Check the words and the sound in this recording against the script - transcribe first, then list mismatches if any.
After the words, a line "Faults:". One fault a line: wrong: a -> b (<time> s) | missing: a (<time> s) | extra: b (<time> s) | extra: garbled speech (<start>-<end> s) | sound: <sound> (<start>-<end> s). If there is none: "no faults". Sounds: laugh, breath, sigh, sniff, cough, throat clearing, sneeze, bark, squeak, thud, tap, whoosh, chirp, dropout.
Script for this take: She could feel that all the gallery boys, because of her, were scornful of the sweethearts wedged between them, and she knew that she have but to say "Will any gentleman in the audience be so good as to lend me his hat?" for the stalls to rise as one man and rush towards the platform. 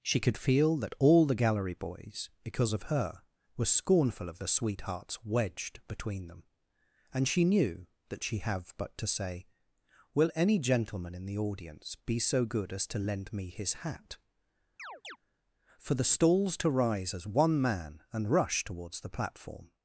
She could feel that all the gallery boys, because of her, were scornful of the sweethearts wedged between them, and she knew that she have but to say "Will any gentleman in the audience be so good as to lend me his hat?" for the stalls to rise as one man and rush towards the platform.
Faults:
sound: chirp (14.8-15.2 s)